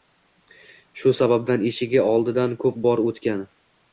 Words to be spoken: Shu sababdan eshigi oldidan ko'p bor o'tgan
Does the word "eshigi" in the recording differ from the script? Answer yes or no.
no